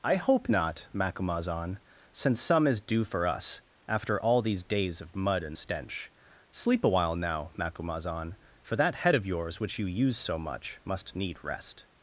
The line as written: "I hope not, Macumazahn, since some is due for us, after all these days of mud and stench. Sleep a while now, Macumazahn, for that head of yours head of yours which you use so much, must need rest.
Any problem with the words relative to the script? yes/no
yes